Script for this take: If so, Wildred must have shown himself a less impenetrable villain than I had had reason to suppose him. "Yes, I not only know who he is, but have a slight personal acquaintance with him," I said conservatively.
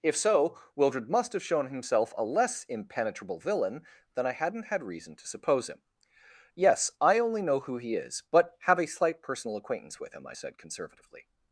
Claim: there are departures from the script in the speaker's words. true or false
true